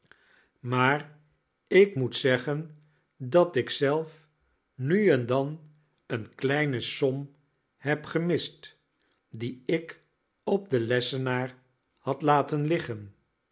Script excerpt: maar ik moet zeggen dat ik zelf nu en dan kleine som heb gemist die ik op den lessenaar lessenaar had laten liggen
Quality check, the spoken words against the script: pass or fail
fail